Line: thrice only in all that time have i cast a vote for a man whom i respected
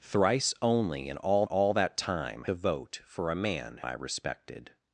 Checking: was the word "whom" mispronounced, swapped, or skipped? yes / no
yes